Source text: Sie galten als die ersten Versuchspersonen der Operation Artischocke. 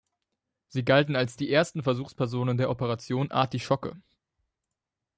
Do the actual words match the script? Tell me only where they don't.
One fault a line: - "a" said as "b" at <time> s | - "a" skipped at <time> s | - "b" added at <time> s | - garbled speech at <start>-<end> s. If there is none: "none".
none